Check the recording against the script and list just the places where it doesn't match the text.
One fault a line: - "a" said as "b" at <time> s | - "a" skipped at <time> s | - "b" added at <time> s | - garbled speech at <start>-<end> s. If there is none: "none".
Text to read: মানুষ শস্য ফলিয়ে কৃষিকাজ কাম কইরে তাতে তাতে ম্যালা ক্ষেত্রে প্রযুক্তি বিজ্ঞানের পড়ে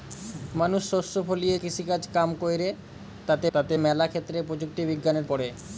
none